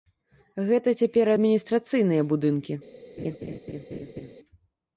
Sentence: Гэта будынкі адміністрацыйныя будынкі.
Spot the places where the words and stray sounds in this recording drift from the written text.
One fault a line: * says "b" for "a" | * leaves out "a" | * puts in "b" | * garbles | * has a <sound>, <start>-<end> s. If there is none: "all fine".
* says "цяпер" for "будынкі"
* has a laugh, 3.2-4.3 s